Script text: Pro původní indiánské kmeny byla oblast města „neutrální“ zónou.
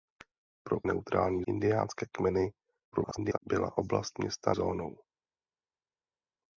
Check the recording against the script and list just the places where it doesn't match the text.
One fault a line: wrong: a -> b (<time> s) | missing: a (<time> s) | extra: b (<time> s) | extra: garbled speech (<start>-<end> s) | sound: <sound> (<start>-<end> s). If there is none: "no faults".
wrong: původní -> neutrální (0.8 s)
extra: garbled speech (2.9-3.4 s)
missing: neutrální (4.5 s)